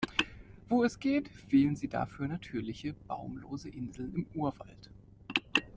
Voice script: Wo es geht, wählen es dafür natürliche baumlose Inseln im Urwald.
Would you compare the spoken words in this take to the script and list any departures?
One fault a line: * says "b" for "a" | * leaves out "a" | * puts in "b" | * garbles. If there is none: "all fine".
* says "sie" for "es"